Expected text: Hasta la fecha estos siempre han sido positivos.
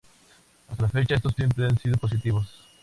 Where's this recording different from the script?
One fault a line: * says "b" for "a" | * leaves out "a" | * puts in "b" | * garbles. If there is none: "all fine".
all fine